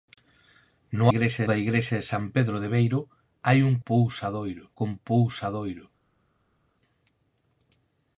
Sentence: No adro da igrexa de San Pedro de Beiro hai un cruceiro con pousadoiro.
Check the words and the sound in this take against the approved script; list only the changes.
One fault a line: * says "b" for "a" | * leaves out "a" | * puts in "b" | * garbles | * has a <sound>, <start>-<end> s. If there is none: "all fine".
* says "igrexa" for "adro"
* says "pousadoiro" for "cruceiro"